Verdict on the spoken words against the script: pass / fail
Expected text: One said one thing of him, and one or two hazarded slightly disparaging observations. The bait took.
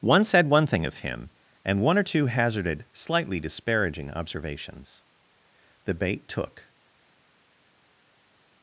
pass